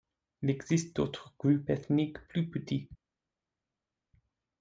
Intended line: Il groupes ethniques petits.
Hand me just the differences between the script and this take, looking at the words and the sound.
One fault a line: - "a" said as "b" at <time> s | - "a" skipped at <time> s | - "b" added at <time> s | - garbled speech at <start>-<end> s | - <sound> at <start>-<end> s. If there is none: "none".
- "existe d'autres" added at 0.5 s
- "plus" added at 2.3 s